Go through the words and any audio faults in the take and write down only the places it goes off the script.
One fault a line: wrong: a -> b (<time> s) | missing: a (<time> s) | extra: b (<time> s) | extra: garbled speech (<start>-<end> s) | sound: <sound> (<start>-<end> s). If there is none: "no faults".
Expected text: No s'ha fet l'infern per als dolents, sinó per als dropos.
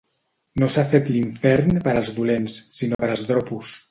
sound: dropout (2.9-3.0 s)